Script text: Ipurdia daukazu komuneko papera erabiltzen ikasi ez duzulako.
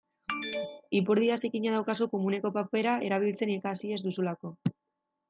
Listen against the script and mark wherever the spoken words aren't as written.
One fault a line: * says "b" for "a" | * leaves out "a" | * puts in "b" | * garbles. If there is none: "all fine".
* puts in "zikina"